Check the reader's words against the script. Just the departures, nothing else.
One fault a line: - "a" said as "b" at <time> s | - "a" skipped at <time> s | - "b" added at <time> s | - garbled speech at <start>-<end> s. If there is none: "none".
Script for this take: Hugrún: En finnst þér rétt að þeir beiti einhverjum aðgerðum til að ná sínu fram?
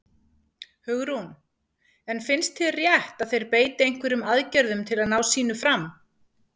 none